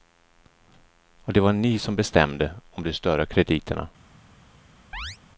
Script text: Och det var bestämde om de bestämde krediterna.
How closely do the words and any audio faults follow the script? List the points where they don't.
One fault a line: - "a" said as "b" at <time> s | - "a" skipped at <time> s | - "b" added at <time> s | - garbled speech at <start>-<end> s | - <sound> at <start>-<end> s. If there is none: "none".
- "ni som" added at 1.5 s
- "bestämde" said as "större" at 2.9 s
- chirp at 4.9-5.2 s